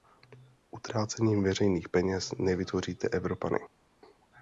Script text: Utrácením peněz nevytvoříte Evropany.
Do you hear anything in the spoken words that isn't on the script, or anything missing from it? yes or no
yes